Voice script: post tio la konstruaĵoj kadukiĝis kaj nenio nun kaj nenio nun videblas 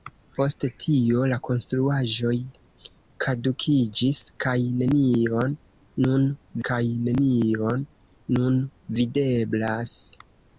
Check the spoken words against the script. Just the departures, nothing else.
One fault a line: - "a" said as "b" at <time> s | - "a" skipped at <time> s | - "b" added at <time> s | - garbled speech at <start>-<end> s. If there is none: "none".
none